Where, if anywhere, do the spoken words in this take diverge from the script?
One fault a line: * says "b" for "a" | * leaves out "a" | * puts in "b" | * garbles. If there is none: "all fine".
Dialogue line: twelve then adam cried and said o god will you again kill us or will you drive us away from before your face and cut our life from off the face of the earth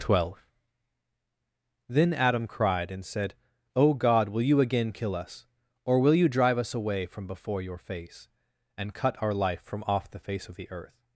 all fine